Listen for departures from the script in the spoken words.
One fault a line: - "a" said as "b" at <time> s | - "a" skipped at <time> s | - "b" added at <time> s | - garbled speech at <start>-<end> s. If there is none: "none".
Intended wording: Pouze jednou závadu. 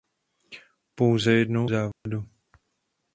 none